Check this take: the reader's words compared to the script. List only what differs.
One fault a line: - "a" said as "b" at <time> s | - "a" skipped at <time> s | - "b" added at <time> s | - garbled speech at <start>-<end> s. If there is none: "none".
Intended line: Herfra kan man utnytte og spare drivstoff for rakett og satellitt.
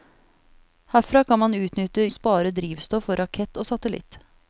none